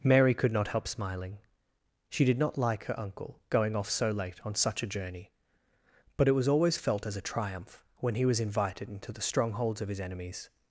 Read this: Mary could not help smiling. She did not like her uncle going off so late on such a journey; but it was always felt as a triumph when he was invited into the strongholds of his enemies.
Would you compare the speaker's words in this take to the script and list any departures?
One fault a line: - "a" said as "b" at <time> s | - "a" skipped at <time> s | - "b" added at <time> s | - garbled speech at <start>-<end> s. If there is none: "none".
none